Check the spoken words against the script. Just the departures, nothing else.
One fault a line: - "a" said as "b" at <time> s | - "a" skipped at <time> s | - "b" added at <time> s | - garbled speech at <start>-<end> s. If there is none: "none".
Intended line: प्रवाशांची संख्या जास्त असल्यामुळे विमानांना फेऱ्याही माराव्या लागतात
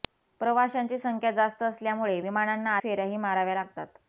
none